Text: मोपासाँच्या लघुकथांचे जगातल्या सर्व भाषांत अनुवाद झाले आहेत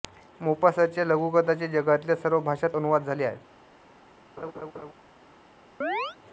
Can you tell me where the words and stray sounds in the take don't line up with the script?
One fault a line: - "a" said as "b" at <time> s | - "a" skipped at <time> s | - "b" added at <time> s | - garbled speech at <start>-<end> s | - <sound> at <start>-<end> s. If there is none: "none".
- laugh at 4.4-4.9 s
- chirp at 5.8-6.2 s